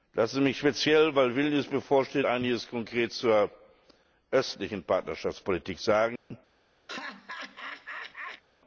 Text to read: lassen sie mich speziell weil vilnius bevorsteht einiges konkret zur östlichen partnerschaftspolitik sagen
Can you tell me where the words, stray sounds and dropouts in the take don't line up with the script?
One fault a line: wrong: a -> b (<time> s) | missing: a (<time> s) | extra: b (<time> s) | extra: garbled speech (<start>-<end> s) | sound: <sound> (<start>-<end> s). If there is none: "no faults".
sound: dropout (6.2-6.3 s)
sound: laugh (6.9-8.4 s)